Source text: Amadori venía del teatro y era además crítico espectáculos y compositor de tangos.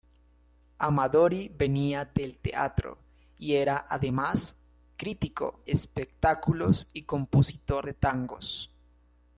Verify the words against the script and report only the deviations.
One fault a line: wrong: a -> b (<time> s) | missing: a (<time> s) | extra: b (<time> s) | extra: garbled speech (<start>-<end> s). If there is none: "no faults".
no faults